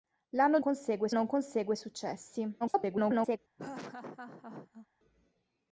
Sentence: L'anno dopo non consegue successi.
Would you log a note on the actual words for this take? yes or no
yes